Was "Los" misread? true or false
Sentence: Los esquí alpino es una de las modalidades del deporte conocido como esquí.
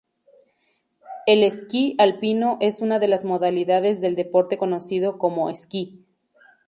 true